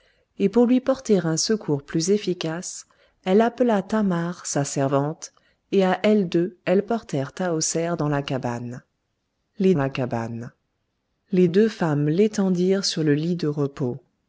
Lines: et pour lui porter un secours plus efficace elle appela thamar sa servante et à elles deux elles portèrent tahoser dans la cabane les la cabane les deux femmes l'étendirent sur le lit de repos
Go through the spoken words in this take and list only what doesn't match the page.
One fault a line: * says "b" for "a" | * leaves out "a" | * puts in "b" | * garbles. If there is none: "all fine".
all fine